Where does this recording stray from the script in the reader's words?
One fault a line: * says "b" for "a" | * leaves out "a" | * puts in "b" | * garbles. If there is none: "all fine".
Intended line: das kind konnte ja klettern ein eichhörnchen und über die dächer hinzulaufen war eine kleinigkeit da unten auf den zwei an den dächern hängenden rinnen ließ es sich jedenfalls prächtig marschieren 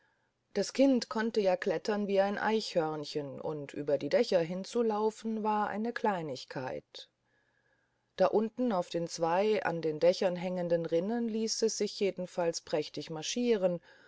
* puts in "wie"